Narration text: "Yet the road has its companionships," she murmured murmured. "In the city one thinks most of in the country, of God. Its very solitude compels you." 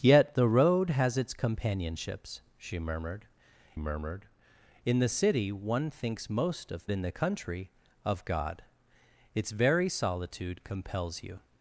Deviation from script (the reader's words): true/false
false